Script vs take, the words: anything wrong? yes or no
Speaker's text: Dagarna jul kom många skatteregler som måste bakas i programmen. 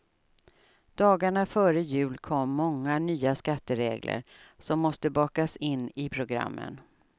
yes